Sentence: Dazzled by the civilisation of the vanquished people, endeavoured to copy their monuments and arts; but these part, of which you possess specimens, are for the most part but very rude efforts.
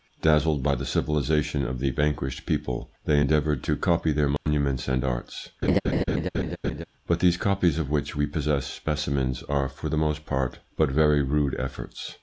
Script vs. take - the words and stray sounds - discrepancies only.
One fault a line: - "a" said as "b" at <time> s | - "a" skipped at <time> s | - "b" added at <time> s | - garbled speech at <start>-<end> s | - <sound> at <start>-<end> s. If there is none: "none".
- "they" added at 3.0 s
- dropout at 4.4-4.5 s
- laugh at 5.6-6.8 s
- "part" said as "copies" at 7.4 s
- "you" said as "we" at 8.1 s